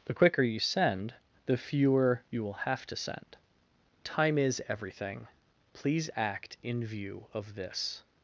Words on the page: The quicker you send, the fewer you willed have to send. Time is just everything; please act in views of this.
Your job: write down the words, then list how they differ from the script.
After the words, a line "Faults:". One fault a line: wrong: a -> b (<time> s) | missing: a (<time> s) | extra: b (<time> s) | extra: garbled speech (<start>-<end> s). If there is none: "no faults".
The quicker you send, the fewer you will have to send. Time is everything; please act in view of this.
Faults:
wrong: willed -> will (2.4 s)
missing: just (4.6 s)
wrong: views -> view (6.9 s)